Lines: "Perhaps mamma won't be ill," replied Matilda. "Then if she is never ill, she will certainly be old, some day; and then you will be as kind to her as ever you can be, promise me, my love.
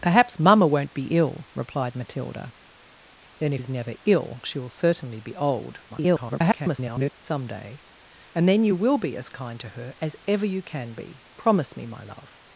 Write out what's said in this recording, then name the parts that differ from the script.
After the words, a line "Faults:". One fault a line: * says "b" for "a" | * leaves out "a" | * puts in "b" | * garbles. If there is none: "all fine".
"Perhaps mamma won't be ill," replied Matilda. "Then if is never ill, she will certainly be old, [garbled] some day; and then you will be as kind to her as ever you can be, promise me, my love.
Faults:
* leaves out "she"
* garbles